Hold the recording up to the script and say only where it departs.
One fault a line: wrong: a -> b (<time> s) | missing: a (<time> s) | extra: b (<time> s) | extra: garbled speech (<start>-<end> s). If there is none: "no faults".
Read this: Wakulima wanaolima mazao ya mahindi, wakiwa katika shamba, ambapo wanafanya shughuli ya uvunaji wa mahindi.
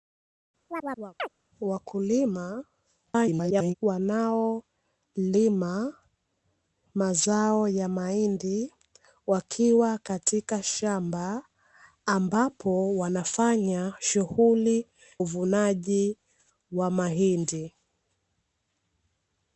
extra: garbled speech (3.1-3.7 s)
missing: ya (14.9 s)